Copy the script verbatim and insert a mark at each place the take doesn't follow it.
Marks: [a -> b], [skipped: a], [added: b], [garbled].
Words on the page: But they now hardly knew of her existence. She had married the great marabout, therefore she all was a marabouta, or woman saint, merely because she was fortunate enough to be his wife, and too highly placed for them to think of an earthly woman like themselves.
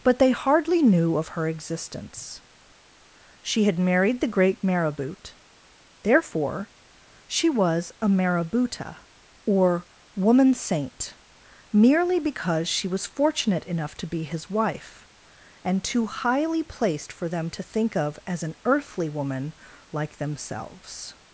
But they [skipped: now] hardly knew of her existence. She had married the great marabout, therefore she [skipped: all] was a marabouta, or woman saint, merely because she was fortunate enough to be his wife, and too highly placed for them to think of [added: as] an earthly woman like themselves.